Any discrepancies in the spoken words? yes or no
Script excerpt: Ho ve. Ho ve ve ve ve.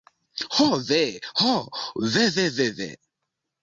no